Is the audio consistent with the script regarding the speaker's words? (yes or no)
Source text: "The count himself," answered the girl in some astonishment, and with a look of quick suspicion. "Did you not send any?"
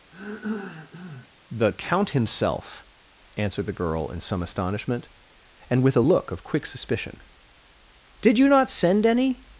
yes